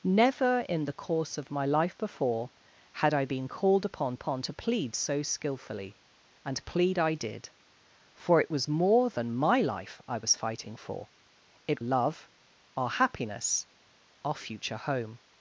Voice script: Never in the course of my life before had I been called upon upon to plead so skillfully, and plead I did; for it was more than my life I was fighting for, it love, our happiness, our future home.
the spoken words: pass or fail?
pass